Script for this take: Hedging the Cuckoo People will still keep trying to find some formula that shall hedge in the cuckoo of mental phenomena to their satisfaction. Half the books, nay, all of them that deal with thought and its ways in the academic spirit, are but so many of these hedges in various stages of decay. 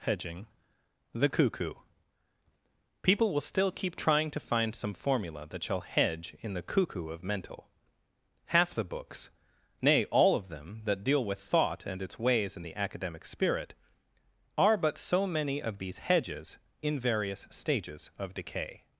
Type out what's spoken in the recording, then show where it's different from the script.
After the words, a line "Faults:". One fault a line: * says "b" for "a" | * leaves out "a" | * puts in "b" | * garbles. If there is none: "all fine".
Hedging the Cuckoo People will still keep trying to find some formula that shall hedge in the cuckoo of mental. Half the books, nay, all of them that deal with thought and its ways in the academic spirit, are but so many of these hedges in various stages of decay.
Faults:
* leaves out "phenomena to their satisfaction"